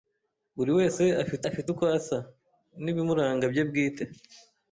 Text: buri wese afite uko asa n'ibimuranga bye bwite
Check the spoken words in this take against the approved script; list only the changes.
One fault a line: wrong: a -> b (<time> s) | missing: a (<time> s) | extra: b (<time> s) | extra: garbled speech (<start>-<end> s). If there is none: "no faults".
extra: afite (1.5 s)